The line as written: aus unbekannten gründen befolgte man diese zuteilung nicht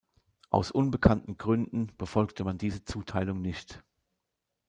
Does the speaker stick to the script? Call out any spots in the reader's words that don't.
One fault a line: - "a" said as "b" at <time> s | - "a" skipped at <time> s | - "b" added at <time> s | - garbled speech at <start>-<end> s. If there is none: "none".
none